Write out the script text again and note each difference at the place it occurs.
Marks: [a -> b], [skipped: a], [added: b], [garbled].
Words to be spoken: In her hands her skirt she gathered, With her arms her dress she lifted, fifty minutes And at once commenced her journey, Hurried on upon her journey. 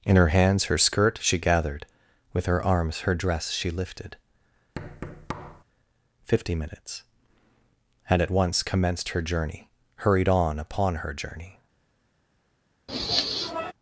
In her hands her skirt she gathered, With her arms her dress she lifted, fifty minutes And at once commenced her journey, Hurried on upon her journey.